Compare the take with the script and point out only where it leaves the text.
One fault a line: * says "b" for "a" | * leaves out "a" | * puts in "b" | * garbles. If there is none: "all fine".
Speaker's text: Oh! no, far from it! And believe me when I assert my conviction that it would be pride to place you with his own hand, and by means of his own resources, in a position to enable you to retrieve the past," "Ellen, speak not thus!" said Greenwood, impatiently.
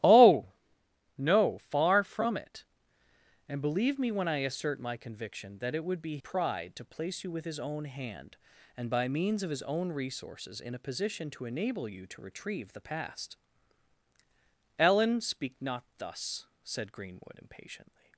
all fine